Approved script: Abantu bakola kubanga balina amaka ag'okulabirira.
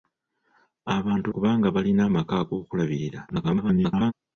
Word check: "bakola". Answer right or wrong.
wrong